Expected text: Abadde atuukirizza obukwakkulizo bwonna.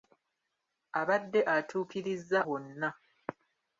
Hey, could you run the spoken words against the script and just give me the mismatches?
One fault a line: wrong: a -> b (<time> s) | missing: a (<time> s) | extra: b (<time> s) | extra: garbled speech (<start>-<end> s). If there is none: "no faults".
missing: obukwakkulizo (2.4 s)